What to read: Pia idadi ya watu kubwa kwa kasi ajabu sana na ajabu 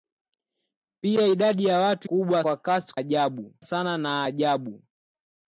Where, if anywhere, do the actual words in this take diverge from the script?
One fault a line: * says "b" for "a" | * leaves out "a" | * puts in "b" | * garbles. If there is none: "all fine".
all fine